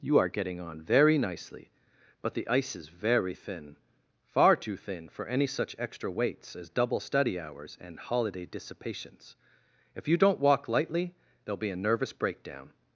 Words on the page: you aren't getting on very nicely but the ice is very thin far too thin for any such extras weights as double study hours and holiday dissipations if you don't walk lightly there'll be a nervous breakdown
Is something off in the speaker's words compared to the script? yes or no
yes